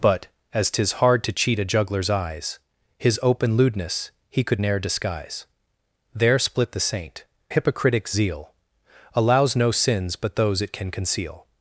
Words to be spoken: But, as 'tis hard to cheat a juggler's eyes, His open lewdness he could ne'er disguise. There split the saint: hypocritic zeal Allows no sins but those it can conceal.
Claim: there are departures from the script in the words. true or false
false